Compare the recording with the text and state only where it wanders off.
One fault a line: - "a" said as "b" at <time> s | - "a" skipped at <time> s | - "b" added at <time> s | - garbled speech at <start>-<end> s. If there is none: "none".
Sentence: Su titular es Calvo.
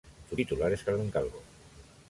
- "Carmen" added at 0.8 s